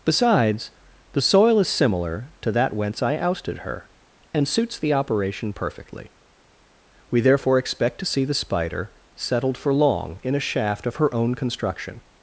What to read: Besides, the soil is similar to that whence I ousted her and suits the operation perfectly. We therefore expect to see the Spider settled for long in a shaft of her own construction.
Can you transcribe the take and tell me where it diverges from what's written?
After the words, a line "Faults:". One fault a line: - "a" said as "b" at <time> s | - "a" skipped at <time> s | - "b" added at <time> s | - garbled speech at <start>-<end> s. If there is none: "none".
Besides, the soil is similar to that whence I ousted her and suits the operation perfectly. We therefore expect to see the Spider settled for long in a shaft of her own construction.
Faults:
none